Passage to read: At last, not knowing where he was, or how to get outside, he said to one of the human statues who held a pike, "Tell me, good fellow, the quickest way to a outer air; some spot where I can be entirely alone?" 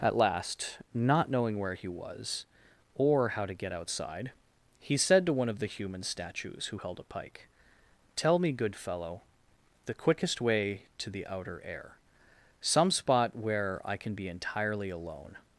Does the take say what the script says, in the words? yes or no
no